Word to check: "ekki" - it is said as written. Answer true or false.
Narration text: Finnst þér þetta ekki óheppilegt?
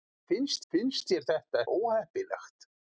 false